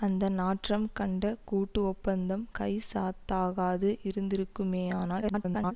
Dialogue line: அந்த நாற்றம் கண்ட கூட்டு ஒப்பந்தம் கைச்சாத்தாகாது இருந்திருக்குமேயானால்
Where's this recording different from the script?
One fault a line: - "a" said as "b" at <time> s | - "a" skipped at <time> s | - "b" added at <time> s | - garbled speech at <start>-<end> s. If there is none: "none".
- garbled speech at 5.2-5.7 s